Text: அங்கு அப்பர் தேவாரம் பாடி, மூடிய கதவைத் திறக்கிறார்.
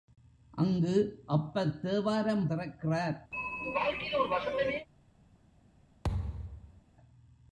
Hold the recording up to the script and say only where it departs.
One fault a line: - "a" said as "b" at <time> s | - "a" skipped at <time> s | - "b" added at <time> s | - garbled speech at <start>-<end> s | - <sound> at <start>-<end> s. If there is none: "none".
- "பாடி மூடிய கதவைத்" skipped at 2.5 s
- throat clearing at 3.3-4.9 s
- thud at 6.0-6.8 s